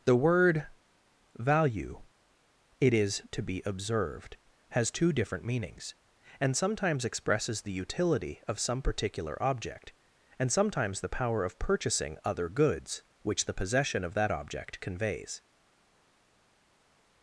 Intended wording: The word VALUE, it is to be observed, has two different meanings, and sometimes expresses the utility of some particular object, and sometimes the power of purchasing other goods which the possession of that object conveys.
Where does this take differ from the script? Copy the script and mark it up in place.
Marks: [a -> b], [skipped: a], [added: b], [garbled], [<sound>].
The word VALUE, it is to be observed, has two different meanings, and sometimes expresses the utility of some particular object, and sometimes the power of purchasing other goods which the possession of that object conveys.